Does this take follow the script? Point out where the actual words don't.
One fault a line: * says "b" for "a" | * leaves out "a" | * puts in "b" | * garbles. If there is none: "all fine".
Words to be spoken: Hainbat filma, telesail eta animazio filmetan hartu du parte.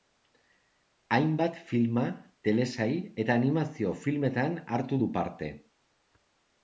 all fine